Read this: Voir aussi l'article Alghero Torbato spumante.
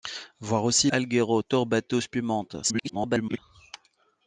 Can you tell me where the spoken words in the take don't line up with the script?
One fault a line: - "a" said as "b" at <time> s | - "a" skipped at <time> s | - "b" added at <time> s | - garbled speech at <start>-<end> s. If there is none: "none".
- "l'article" skipped at 0.9 s
- garbled speech at 2.6-3.4 s